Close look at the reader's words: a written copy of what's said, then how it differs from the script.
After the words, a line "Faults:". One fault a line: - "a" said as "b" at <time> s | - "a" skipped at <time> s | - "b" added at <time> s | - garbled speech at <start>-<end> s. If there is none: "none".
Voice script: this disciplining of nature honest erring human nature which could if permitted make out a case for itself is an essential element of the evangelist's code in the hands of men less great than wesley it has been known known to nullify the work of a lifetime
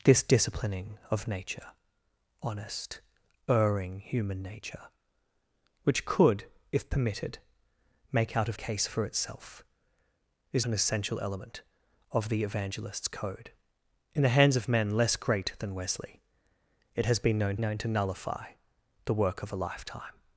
this disciplining of nature honest erring human nature which could if permitted make out a case for itself is an essential element of the evangelist's code in the hands of men less great than wesley it has been known known to nullify the work of a lifetime
Faults:
none